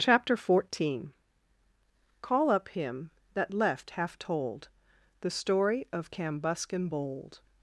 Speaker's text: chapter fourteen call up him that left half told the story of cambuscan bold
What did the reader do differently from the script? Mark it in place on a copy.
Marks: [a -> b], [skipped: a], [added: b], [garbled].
chapter fourteen call up him that left half told the story of cambuscan bold